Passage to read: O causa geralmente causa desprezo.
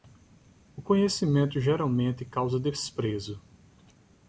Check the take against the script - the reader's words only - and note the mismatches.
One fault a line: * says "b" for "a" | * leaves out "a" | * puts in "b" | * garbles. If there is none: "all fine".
* says "conhecimento" for "causa"